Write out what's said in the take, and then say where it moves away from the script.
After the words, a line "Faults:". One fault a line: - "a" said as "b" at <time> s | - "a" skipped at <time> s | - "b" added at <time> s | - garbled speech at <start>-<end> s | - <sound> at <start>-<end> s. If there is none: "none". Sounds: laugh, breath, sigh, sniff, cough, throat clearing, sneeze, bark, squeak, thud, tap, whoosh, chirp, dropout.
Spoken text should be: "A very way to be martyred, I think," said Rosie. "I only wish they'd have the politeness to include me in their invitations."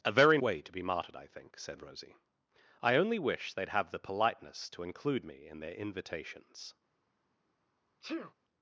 "A very way to be martyred, I think," said Rosie. "I only wish they'd have the politeness to include me in their invitations."
Faults:
- sneeze at 8.0-8.3 s